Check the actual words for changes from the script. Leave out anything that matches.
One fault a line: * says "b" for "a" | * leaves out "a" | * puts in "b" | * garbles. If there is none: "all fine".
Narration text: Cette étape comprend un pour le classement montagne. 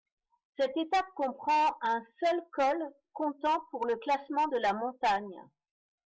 * puts in "seul col comptant"
* puts in "de la"